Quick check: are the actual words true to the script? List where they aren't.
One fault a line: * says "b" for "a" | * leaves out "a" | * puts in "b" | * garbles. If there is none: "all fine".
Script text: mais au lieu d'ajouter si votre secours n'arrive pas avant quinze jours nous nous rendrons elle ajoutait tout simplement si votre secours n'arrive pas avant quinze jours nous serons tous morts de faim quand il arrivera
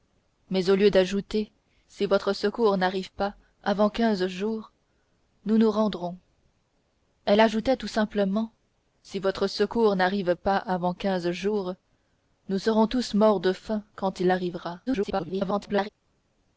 * garbles